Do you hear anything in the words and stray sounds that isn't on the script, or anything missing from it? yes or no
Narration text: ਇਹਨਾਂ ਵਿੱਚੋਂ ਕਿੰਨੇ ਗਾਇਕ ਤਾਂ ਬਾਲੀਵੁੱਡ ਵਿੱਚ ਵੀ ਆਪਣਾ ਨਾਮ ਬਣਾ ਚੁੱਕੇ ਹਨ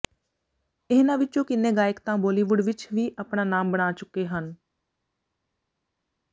no